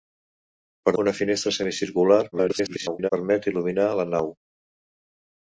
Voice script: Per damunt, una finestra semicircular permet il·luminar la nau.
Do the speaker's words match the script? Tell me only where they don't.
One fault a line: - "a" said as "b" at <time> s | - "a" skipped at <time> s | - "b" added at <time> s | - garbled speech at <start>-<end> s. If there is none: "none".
- "damunt" skipped at 0.9 s
- garbled speech at 2.3-3.1 s